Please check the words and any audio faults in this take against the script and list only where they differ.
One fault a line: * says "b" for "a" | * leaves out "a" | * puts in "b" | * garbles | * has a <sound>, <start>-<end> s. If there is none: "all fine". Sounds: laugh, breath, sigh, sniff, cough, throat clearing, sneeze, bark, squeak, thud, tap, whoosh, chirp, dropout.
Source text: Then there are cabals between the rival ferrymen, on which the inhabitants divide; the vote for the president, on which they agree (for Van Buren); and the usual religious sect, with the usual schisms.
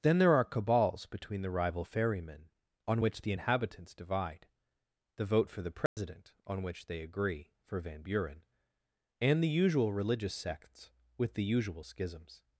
* has a dropout, 5.9-6.0 s
* says "sects" for "sect"